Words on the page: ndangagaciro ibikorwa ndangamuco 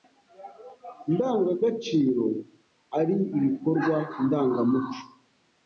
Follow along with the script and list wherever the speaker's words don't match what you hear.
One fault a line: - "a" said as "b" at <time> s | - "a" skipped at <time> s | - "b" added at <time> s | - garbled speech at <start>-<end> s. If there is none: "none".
- "ari" added at 3.0 s